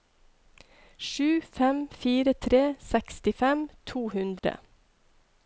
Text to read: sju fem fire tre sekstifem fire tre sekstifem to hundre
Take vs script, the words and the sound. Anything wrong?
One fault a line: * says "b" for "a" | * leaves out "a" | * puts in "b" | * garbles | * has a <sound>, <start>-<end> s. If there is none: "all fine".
* leaves out "fire tre sekstifem"
* has a dropout, 4.4-4.4 s